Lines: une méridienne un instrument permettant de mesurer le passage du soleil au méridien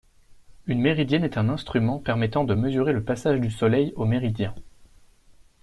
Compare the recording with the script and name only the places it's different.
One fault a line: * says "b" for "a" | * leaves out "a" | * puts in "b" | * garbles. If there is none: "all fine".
* puts in "est"